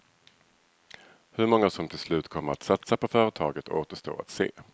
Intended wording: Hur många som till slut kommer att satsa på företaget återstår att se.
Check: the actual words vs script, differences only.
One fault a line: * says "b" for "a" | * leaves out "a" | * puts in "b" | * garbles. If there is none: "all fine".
all fine